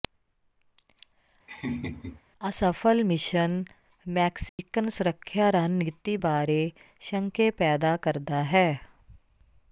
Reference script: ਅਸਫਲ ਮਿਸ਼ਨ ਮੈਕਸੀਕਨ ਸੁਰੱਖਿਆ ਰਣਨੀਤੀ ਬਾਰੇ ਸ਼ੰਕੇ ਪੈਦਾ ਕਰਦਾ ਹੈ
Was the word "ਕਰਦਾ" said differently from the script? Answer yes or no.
no